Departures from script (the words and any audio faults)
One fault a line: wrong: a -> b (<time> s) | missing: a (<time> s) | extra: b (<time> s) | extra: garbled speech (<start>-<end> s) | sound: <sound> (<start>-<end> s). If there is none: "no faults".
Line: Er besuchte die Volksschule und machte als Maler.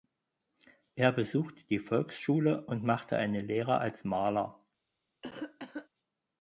extra: eine Lehre (3.2 s)
sound: cough (5.2-5.9 s)